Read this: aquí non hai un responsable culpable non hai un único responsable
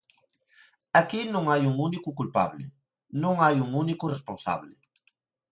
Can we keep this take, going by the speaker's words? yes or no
no